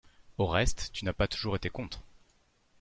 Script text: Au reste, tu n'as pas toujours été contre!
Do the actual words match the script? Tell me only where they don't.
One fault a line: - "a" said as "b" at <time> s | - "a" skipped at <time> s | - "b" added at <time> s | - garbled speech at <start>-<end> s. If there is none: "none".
none